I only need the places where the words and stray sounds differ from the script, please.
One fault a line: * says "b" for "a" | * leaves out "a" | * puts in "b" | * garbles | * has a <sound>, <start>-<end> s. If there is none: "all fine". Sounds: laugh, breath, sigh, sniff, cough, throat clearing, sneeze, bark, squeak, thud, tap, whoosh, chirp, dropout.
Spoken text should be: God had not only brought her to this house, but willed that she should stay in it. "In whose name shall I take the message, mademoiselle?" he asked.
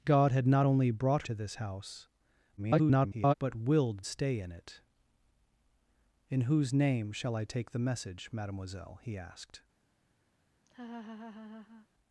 * leaves out "her"
* garbles
* leaves out "that she should"
* has a laugh, 10.7-11.9 s